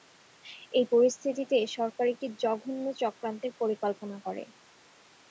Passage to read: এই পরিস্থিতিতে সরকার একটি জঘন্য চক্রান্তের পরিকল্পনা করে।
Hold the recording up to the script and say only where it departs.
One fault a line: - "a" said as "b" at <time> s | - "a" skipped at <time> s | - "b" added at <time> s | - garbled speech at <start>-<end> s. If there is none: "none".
none